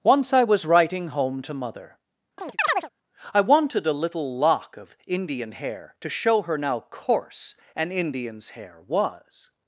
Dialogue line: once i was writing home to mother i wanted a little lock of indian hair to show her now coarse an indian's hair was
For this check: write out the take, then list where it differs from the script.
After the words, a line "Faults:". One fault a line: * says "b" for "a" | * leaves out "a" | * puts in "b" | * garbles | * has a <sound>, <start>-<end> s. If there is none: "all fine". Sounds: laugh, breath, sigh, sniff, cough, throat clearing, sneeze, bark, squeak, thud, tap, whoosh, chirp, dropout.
once i was writing home to mother i wanted a little lock of indian hair to show her now coarse an indian's hair was
Faults:
* has a chirp, 2.4-2.9 s